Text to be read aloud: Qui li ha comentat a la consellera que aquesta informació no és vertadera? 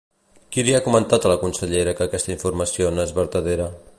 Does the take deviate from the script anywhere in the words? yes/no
no